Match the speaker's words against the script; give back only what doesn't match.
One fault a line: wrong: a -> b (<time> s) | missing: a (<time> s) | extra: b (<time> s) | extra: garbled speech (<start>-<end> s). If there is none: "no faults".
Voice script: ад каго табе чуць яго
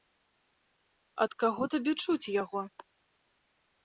no faults